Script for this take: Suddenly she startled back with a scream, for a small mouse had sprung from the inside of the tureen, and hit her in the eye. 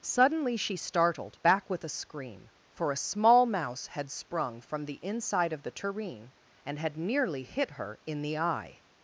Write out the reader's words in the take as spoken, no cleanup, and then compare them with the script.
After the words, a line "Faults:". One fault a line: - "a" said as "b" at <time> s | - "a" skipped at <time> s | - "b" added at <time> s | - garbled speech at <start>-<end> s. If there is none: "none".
Suddenly she startled back with a scream, for a small mouse had sprung from the inside of the tureen, and had nearly hit her in the eye.
Faults:
- "had nearly" added at 6.8 s